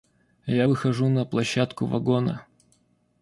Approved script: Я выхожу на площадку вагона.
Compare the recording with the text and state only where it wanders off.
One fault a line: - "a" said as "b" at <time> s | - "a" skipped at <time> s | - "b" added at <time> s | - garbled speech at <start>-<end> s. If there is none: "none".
none